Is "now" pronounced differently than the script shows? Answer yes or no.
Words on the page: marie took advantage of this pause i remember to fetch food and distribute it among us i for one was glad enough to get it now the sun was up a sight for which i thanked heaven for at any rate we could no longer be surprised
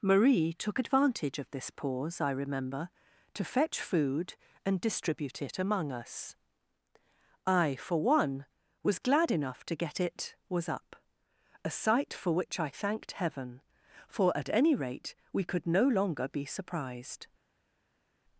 yes